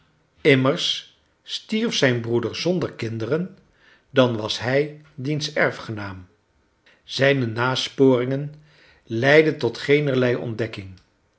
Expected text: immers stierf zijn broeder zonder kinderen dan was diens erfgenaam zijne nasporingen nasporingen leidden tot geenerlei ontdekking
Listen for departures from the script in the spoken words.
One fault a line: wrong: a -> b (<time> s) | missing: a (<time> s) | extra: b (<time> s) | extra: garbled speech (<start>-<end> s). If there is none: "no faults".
extra: hij (4.6 s)
missing: nasporingen (8.5 s)